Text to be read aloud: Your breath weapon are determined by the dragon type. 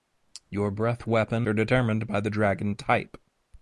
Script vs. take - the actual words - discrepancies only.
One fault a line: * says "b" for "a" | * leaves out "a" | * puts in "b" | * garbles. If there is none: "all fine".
all fine